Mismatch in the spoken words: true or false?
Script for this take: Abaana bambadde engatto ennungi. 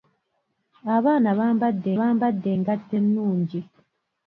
true